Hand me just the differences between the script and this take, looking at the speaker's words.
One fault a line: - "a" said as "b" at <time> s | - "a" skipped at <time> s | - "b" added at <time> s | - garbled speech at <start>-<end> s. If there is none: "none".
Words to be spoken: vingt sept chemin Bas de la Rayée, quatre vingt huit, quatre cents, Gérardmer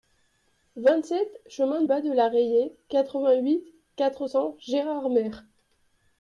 none